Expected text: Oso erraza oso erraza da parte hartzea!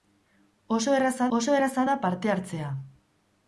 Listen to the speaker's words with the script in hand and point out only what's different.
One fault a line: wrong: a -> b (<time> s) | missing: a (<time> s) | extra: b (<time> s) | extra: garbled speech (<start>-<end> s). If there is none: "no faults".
no faults